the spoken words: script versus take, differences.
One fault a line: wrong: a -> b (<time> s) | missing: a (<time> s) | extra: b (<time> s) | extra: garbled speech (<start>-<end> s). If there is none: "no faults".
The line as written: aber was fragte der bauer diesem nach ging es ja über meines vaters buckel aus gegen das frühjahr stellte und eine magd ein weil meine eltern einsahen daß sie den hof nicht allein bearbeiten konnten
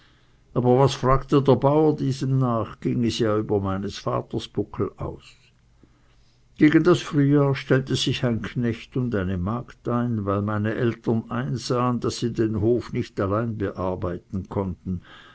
extra: sich ein knecht (8.0 s)